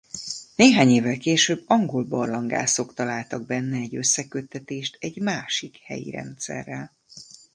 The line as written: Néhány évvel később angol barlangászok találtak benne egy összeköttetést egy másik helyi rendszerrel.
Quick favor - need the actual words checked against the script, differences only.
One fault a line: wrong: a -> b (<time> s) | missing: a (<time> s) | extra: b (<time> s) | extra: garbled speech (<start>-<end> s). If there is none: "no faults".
no faults